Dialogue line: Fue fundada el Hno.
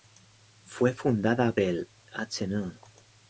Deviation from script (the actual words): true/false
false